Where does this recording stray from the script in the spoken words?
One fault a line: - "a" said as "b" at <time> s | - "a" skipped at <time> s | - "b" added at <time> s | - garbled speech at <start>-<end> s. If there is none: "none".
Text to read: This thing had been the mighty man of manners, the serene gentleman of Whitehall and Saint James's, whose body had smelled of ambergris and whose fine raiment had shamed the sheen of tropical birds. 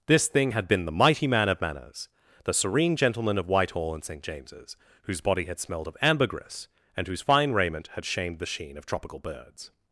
none